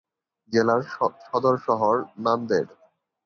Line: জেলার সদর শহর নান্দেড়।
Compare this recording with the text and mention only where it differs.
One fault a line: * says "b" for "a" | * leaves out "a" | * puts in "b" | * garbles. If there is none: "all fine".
all fine